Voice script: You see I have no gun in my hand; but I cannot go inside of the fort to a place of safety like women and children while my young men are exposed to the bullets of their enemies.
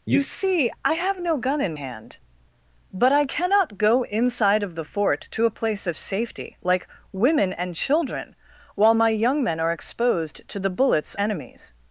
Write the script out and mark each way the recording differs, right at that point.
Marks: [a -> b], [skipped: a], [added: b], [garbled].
You see I have no gun in [skipped: my] hand; but I cannot go inside of the fort to a place of safety like women and children while my young men are exposed to the bullets [skipped: of their] enemies.